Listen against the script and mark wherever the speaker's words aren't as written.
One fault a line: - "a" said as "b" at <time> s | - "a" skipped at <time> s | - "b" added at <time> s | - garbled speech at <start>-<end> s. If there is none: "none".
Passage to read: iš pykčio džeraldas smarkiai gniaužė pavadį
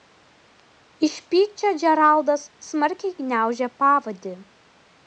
none